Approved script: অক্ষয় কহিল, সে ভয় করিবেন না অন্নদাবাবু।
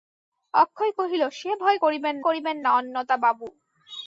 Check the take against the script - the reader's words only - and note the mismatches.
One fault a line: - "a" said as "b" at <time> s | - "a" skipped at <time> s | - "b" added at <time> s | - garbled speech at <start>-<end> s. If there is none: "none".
- "করিবেন" added at 2.2 s